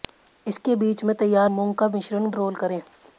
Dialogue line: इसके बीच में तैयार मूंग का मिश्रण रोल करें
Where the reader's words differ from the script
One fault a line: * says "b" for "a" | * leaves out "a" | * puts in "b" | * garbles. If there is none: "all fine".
all fine